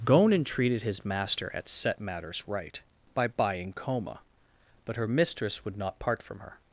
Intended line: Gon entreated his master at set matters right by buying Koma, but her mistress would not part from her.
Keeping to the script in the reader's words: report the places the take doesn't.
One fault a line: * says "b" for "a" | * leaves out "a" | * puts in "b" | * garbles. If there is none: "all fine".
all fine